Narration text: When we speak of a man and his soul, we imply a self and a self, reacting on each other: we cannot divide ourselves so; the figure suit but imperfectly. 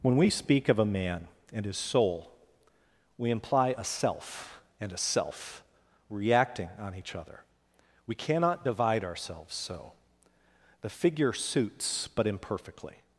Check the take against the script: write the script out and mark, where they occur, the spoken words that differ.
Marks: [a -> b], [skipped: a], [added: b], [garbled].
When we speak of a man and his soul, we imply a self and a self, reacting on each other: we cannot divide ourselves so; the figure [suit -> suits] but imperfectly.